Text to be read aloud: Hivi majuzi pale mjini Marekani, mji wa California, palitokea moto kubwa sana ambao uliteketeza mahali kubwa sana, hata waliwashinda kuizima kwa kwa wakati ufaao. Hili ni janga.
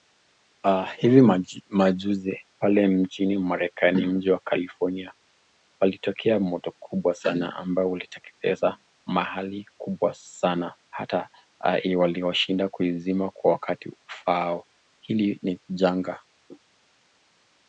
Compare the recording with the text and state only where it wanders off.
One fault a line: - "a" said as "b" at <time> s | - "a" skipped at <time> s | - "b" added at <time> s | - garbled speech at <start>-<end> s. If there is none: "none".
- "kwa" skipped at 13.5 s